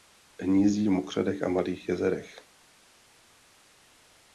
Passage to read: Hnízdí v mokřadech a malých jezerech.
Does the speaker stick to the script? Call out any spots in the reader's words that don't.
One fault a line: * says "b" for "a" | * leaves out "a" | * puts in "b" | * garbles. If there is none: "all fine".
all fine